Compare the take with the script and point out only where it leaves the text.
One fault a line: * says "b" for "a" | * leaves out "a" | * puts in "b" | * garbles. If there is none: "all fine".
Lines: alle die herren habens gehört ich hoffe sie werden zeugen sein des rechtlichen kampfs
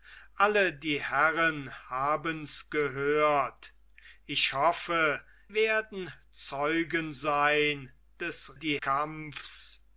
* leaves out "sie"
* says "die" for "rechtlichen"